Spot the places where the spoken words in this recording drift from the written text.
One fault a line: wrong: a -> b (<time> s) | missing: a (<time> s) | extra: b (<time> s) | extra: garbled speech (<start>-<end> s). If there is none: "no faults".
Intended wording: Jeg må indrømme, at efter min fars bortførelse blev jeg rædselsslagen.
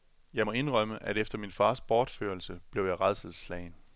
no faults